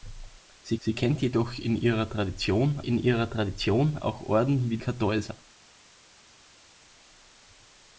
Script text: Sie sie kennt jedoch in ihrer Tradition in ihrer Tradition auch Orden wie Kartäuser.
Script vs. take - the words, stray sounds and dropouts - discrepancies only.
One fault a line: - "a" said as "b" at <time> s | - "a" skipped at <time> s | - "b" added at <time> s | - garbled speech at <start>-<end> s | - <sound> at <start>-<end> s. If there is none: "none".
none